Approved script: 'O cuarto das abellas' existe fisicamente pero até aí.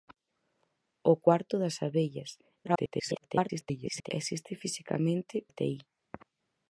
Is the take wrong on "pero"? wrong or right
wrong